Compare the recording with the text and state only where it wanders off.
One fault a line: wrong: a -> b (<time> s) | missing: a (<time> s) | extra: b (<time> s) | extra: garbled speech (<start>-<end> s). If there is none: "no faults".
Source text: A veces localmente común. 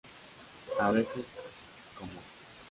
missing: localmente (1.2 s)